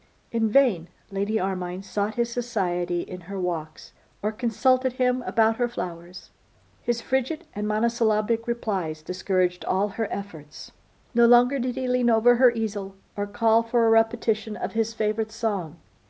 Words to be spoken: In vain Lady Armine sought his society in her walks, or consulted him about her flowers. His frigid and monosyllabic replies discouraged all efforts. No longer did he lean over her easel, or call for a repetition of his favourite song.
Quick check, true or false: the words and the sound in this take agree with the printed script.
false